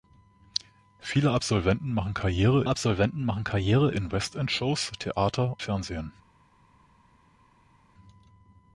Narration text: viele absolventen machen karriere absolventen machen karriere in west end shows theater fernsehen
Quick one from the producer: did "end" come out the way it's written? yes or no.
yes